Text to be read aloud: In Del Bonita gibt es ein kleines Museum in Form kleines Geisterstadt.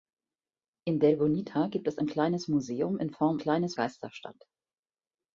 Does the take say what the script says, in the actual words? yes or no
yes